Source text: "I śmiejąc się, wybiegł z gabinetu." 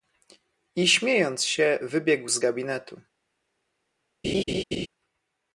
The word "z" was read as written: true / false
true